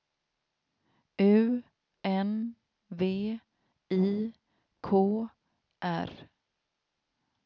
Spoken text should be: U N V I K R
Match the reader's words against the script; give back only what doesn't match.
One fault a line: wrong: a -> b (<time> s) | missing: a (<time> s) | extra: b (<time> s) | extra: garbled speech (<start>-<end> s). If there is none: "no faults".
no faults